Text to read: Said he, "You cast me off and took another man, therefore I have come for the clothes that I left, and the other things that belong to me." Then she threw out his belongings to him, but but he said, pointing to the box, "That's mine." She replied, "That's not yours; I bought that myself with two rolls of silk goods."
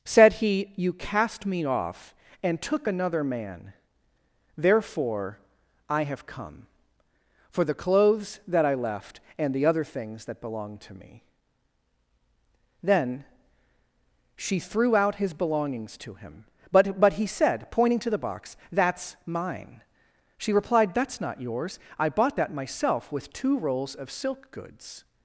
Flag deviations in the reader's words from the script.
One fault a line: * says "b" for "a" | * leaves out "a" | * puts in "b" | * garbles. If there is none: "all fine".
all fine